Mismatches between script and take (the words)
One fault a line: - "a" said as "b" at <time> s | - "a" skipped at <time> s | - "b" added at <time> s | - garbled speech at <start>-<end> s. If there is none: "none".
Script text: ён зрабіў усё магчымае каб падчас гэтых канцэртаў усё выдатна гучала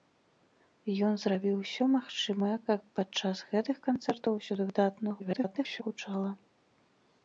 - garbled speech at 5.2-5.8 s